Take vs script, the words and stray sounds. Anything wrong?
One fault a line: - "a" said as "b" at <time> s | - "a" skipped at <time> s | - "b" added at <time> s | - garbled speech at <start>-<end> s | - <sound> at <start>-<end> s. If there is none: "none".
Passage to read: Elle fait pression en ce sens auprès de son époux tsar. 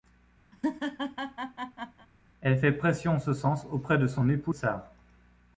- laugh at 0.5-2.1 s